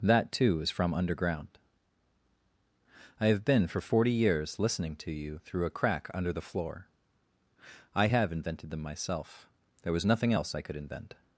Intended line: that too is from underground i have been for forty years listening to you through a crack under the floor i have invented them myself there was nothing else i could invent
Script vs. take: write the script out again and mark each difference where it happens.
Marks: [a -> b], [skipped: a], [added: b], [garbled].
that too is from underground i have been for forty years listening to you through a crack under the floor i have invented them myself there was nothing else i could invent